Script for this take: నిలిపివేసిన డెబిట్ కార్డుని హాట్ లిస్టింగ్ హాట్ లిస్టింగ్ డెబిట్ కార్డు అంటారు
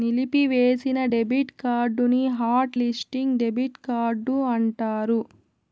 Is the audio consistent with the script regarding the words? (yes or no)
no